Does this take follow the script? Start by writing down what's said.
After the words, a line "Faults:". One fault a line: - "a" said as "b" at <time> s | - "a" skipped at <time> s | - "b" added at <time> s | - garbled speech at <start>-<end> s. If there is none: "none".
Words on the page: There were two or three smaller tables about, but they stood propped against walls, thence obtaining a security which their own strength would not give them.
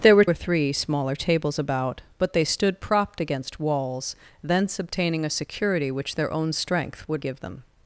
There were or three smaller tables about, but they stood propped against walls, thence obtaining a security which their own strength would give them.
Faults:
- "two" skipped at 0.2 s
- "not" skipped at 7.2 s